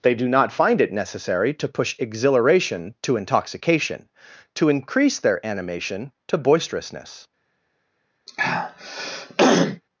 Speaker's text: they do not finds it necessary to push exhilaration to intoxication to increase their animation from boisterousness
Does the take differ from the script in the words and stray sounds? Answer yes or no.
yes